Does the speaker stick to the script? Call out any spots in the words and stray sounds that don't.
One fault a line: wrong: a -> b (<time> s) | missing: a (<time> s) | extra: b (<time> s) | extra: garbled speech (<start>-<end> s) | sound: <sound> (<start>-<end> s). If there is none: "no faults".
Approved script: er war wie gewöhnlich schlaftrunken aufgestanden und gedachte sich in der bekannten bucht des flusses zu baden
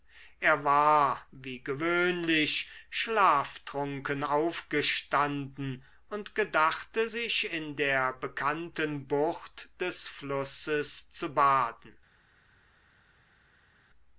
no faults